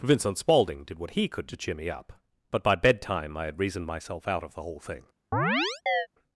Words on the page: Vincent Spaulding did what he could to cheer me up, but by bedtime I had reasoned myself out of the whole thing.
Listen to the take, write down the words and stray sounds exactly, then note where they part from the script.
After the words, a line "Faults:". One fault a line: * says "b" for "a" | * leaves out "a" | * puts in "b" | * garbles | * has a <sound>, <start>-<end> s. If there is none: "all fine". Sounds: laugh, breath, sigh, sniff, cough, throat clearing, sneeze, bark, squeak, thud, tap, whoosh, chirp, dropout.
Vincent Spaulding did what he could to cheer me up, but by bedtime I had reasoned myself out of the whole thing.
Faults:
* has a chirp, 5.3-6.1 s